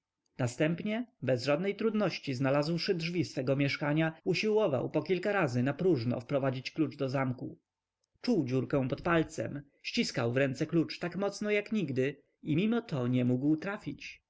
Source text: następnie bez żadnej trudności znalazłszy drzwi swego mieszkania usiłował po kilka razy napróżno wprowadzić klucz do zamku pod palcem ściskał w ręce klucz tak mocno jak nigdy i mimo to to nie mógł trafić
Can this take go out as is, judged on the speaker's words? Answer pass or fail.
fail